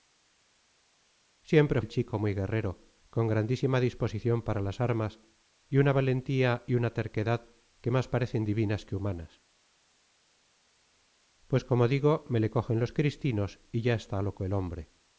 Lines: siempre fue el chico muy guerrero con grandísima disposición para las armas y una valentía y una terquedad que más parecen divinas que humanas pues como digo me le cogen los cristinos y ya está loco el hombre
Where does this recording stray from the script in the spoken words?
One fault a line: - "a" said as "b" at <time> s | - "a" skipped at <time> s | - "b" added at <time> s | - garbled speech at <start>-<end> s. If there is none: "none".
- "fue" skipped at 1.8 s